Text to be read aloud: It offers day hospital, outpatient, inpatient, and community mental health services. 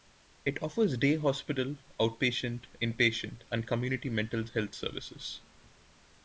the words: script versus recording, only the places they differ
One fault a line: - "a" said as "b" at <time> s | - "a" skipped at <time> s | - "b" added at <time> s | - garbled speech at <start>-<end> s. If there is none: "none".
none